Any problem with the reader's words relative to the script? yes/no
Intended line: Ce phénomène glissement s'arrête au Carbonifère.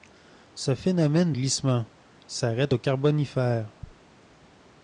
no